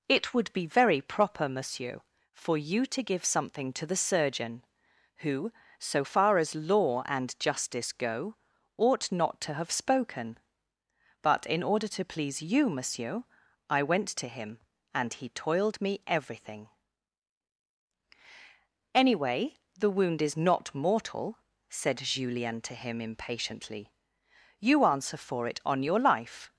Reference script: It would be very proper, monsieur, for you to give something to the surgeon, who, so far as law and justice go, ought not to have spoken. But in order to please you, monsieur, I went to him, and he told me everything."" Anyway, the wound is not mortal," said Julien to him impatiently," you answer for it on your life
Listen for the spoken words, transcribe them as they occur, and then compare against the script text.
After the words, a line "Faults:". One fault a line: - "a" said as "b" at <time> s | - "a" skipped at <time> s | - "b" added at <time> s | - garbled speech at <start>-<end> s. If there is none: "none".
It would be very proper, monsieur, for you to give something to the surgeon, who, so far as law and justice go, ought not to have spoken. But in order to please you, monsieur, I went to him, and he toiled me everything."" Anyway, the wound is not mortal," said Julien to him impatiently," you answer for it on your life
Faults:
- "told" said as "toiled" at 15.3 s